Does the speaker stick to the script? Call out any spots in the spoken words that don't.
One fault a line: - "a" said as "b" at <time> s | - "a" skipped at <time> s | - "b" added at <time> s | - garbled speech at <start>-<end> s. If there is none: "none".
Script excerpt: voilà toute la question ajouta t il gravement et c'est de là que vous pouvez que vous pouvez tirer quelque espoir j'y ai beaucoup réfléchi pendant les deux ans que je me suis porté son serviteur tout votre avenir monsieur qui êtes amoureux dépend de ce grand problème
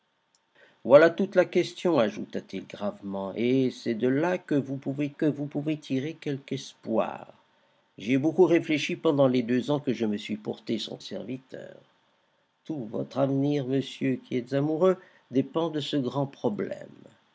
none